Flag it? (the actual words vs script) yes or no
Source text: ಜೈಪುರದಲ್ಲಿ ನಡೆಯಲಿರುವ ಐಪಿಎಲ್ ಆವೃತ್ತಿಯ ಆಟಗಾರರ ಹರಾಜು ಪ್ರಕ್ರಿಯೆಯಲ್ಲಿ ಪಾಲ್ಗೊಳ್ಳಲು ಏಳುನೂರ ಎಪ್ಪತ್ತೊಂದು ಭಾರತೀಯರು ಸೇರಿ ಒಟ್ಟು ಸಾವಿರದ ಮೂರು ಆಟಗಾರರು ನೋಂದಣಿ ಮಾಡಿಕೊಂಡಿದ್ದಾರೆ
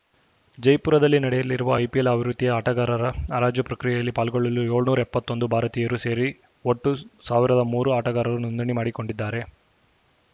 no